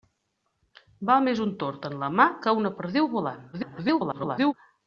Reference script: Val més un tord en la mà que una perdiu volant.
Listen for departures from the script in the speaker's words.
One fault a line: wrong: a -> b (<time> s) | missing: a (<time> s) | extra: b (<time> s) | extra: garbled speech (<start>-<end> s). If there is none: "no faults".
extra: garbled speech (3.5-4.5 s)